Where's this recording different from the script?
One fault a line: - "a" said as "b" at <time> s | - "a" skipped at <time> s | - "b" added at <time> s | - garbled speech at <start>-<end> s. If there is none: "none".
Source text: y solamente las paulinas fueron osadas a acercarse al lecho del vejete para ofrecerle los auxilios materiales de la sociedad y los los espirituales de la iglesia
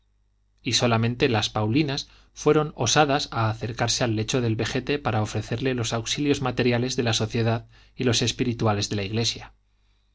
- "los" skipped at 8.2 s